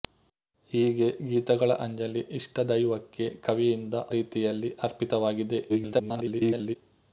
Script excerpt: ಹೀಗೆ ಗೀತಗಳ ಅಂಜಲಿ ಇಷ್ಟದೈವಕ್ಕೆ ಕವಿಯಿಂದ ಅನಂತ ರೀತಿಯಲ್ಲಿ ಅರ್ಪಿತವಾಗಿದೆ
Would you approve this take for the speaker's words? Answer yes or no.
no